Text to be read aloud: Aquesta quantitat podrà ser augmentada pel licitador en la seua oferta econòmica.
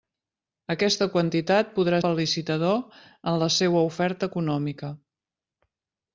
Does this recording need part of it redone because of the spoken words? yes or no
yes